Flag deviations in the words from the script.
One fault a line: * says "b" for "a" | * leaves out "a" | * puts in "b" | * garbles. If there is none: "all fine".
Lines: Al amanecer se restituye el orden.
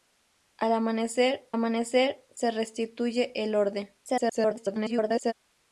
* puts in "amanecer"
* garbles